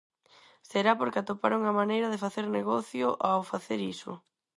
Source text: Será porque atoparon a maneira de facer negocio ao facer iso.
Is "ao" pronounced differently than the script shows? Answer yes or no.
no